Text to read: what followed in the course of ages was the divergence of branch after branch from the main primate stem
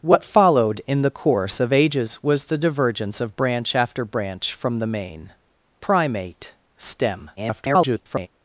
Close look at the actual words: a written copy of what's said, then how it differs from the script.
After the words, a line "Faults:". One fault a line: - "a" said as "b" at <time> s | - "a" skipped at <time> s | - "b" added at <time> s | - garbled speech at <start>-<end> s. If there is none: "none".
what followed in the course of ages was the divergence of branch after branch from the main primate stem [garbled]
Faults:
- garbled speech at 7.4-8.3 s